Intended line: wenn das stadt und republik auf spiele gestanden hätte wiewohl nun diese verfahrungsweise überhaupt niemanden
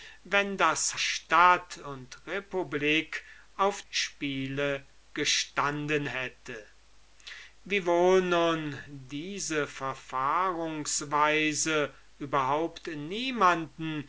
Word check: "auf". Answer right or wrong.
right